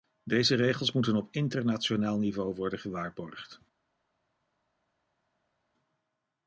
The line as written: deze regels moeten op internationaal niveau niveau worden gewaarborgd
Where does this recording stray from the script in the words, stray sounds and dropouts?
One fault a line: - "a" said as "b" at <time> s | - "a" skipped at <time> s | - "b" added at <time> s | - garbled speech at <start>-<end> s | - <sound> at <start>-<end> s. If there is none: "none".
- "niveau" skipped at 2.5 s